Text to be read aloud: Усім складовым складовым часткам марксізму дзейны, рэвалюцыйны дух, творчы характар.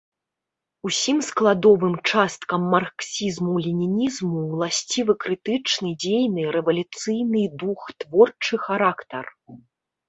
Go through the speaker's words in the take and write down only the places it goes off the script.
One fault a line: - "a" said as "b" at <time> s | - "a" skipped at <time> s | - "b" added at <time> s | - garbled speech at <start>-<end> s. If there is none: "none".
- "складовым" skipped at 1.9 s
- "ленінізму ўласцівы крытычны" added at 3.7 s